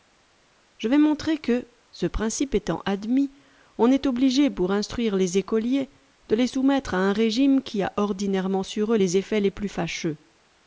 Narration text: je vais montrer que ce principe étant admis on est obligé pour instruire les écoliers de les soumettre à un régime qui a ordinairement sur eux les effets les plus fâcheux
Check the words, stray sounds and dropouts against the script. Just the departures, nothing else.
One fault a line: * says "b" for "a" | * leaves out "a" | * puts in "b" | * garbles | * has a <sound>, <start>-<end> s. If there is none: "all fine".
all fine